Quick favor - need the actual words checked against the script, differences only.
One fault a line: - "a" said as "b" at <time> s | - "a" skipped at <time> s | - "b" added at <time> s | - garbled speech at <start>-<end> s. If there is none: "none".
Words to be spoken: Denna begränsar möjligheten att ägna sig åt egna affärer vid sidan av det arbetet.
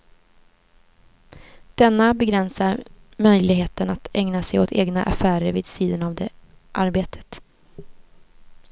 none